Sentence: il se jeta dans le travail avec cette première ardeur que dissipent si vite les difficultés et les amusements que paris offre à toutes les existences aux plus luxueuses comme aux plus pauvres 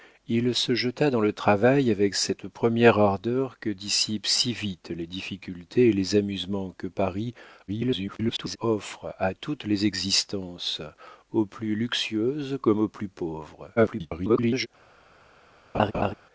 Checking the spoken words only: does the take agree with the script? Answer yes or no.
no